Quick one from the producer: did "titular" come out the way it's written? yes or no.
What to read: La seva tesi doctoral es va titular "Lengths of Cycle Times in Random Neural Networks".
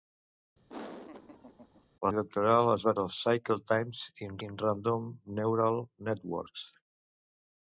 no